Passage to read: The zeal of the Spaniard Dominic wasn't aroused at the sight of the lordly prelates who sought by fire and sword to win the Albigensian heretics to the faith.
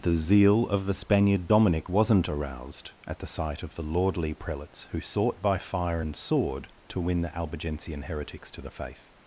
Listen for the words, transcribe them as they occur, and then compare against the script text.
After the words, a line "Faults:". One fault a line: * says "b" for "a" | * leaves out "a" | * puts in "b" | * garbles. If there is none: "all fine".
The zeal of the Spaniard Dominic wasn't aroused at the sight of the lordly prelates who sought by fire and sword to win the Albigensian heretics to the faith.
Faults:
all fine